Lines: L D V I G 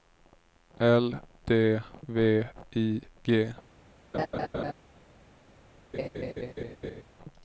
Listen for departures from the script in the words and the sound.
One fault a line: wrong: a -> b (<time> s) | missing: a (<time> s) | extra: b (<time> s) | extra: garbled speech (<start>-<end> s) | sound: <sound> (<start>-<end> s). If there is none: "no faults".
sound: laugh (4.1-4.7 s)
sound: laugh (5.9-7.0 s)